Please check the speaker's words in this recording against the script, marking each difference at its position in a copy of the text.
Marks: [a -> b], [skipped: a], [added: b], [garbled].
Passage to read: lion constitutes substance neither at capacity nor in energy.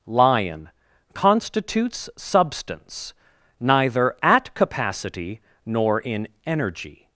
lion constitutes substance neither at capacity nor in energy.